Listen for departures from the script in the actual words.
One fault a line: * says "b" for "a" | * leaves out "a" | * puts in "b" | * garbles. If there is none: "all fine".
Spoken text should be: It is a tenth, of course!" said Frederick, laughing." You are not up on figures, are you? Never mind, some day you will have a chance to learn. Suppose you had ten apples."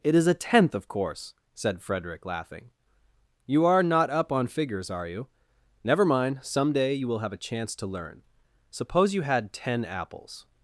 all fine